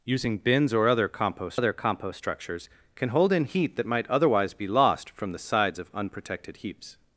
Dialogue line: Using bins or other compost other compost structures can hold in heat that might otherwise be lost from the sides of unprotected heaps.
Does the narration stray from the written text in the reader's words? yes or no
no